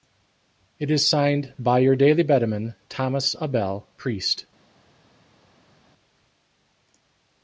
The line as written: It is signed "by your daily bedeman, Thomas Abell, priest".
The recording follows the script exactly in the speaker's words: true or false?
true